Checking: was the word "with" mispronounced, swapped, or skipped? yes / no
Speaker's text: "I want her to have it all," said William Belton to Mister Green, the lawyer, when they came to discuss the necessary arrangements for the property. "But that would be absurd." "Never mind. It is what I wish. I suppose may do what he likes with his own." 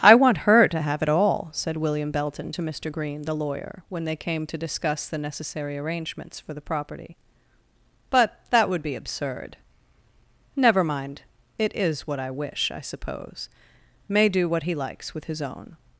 no